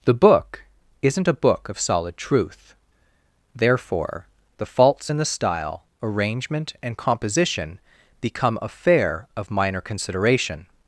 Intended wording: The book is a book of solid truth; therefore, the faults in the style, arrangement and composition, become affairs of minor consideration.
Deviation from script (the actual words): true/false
true